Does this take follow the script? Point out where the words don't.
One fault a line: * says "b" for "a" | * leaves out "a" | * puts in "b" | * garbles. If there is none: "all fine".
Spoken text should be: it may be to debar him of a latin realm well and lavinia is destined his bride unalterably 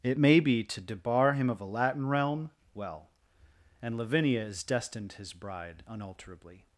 all fine